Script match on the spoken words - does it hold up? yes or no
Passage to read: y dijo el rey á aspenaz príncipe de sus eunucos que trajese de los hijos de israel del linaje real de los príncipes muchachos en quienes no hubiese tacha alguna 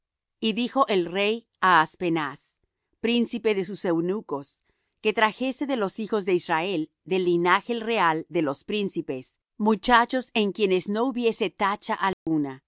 yes